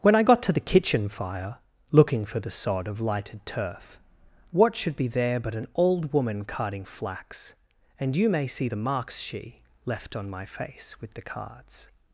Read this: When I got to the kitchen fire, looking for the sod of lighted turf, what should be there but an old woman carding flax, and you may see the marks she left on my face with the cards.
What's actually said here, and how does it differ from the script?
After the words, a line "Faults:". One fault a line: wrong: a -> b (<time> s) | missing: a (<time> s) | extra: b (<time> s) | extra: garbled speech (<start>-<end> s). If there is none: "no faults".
When I got to the kitchen fire, looking for the sod of lighted turf, what should be there but an old woman carding flax, and you may see the marks she left on my face with the cards.
Faults:
no faults